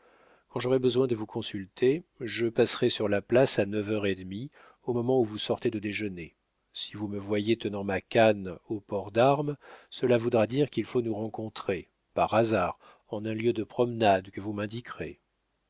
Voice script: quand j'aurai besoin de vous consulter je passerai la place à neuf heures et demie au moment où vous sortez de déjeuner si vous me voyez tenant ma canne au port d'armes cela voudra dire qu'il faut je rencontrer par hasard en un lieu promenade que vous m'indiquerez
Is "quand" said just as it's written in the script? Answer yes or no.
yes